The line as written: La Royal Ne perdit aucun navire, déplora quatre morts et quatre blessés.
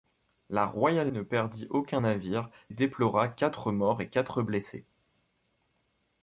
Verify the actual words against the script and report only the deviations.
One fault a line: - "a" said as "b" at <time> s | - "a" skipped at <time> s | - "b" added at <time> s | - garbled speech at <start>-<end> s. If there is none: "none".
none